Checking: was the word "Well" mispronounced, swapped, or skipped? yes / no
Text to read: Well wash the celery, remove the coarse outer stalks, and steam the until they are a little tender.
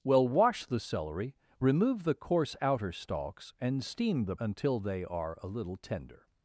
no